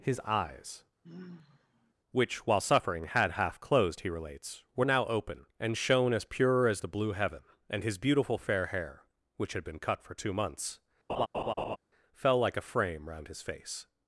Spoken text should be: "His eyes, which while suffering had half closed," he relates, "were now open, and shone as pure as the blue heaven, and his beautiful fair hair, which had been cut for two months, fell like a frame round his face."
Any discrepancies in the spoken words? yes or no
no